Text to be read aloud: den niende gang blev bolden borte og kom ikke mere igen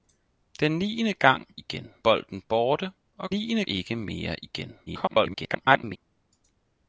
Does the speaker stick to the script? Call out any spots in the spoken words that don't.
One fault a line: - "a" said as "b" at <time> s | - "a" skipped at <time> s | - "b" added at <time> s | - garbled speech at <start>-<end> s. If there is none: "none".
- "blev" said as "igen" at 1.6 s
- "kom" said as "niende" at 3.3 s
- garbled speech at 4.9-6.0 s